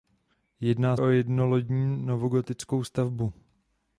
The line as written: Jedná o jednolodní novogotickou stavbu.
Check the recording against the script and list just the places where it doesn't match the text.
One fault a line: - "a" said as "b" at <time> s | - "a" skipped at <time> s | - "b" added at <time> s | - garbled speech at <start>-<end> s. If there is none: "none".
none